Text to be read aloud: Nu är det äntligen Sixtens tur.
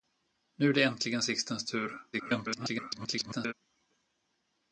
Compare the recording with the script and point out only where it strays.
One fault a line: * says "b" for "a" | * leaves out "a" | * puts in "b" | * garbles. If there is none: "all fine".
* garbles